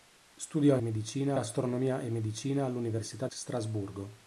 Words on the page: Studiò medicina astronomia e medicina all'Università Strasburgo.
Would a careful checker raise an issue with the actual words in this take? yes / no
no